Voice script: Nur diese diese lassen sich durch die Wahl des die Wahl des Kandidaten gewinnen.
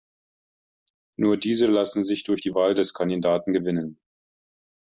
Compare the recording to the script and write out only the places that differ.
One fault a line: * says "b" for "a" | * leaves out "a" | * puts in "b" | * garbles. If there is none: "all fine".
* leaves out "diese"
* leaves out "die Wahl des"